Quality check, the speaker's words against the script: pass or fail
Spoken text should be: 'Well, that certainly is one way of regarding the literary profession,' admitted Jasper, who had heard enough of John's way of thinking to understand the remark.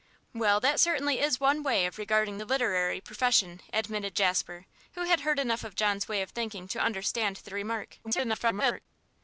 fail